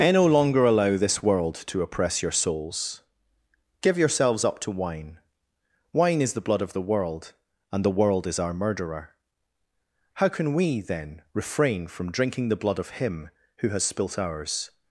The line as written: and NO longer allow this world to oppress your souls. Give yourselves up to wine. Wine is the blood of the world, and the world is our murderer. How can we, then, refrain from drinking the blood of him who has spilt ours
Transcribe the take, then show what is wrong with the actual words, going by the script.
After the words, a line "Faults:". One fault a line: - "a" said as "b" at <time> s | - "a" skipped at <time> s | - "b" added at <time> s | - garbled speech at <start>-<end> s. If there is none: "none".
and NO longer allow this world to oppress your souls. Give yourselves up to wine. Wine is the blood of the world, and the world is our murderer. How can we, then, refrain from drinking the blood of him who has spilt ours
Faults:
none